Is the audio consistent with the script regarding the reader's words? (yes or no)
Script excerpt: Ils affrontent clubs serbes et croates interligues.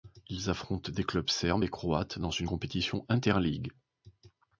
no